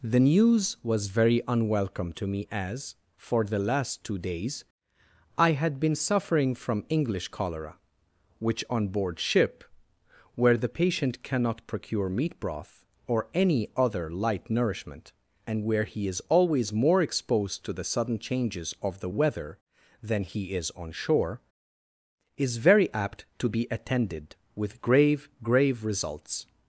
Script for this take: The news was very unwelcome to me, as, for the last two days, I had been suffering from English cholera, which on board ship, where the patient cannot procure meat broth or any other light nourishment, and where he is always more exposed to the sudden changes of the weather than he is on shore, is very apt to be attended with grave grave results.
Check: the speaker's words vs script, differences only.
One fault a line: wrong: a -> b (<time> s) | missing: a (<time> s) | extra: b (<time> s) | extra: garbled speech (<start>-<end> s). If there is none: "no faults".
no faults